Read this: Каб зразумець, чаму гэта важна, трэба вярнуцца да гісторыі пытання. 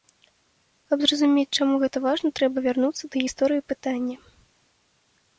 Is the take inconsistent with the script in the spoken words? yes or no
no